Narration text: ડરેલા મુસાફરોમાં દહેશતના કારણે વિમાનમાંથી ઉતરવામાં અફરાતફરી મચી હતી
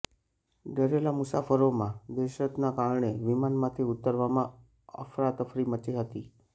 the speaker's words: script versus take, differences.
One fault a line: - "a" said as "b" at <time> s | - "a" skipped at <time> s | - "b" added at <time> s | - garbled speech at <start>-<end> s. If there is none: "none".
none